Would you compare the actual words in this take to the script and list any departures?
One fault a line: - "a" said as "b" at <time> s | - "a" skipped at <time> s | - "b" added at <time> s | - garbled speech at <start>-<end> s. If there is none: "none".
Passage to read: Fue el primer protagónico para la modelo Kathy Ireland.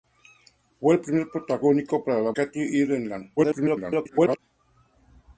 - "modelo" skipped at 2.3 s
- garbled speech at 3.4-4.4 s